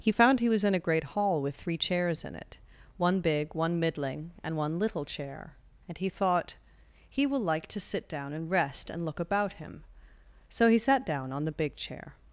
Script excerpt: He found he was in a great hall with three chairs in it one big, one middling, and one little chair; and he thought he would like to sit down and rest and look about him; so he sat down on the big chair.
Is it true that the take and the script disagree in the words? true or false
true